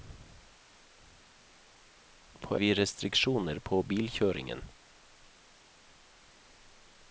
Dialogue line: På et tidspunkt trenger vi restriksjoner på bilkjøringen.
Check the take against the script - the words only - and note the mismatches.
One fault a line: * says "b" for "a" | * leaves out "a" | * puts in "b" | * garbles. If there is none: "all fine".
* leaves out "et tidspunkt trenger"